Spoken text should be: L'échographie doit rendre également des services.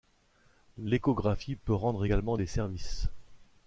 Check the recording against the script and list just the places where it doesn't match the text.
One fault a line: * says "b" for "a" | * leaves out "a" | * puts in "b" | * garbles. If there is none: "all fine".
* says "peut" for "doit"